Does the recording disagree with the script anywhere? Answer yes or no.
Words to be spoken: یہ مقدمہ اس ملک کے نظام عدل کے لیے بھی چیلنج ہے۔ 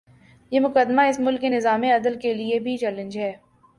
no